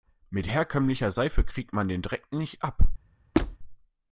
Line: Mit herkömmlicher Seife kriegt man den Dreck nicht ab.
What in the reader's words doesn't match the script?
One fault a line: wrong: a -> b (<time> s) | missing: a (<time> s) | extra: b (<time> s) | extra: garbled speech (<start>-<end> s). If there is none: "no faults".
no faults